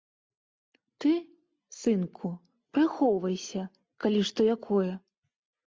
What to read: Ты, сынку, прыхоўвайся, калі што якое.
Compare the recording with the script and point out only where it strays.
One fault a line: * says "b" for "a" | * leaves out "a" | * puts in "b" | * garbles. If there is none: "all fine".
all fine